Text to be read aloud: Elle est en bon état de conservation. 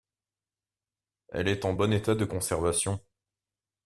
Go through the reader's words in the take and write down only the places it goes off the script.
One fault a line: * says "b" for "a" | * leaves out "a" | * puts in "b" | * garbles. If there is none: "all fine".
all fine